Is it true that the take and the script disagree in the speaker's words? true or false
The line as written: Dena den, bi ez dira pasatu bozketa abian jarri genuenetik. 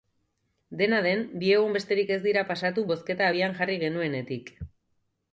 true